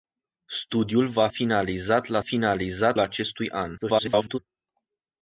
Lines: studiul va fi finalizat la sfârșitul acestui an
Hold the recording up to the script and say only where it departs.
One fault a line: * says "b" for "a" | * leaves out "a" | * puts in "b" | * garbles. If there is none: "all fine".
* leaves out "fi"
* says "finalizat" for "sfârșitul"
* garbles